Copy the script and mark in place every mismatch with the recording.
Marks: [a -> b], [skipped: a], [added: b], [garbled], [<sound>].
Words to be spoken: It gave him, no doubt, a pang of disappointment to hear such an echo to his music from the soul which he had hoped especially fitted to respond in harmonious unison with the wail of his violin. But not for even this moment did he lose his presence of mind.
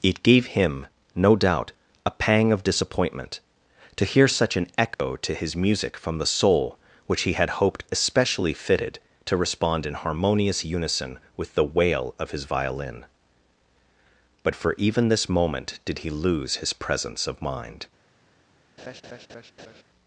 It gave him, no doubt, a pang of disappointment to hear such an echo [dropout] to his music from the soul which he had hoped especially fitted to respond in harmonious unison with the wail of his violin. But [skipped: not] for even this moment did he lose his presence of mind. [laugh]